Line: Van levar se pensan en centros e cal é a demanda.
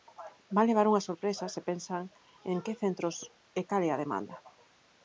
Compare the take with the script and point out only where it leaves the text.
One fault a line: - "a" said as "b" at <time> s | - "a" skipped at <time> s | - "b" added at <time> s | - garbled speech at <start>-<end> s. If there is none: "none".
- "unha sorpresa" added at 0.9 s
- "que" added at 2.6 s